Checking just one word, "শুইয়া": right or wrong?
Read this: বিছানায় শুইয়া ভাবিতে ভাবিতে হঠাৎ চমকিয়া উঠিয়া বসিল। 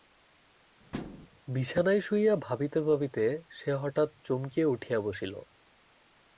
right